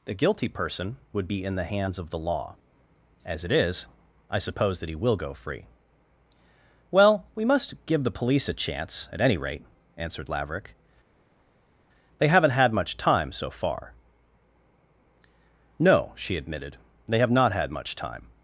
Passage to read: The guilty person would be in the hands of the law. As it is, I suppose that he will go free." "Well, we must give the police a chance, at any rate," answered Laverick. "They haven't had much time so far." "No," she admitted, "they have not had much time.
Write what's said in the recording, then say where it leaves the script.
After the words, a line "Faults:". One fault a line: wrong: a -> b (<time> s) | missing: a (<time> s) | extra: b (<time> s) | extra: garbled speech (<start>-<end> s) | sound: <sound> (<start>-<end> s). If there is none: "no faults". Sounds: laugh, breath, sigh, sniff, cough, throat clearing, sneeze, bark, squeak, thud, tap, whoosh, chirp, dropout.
The guilty person would be in the hands of the law. As it is, I suppose that he will go free." "Well, we must give the police a chance, at any rate," answered Laverick. "They haven't had much time so far." "No," she admitted, "they have not had much time.
Faults:
no faults